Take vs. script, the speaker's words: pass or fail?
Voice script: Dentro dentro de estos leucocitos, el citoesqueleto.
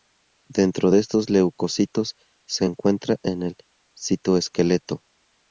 fail